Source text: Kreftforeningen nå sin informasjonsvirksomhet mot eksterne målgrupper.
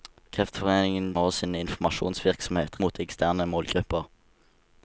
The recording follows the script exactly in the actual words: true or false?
true